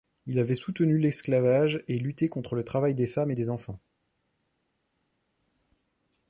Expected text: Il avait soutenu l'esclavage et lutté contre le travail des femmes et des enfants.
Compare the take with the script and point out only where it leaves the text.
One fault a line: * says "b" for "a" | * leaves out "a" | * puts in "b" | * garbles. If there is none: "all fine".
all fine